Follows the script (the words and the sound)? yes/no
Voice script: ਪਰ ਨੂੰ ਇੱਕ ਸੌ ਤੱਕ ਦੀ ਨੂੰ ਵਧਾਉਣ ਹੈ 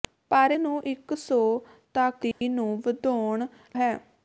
no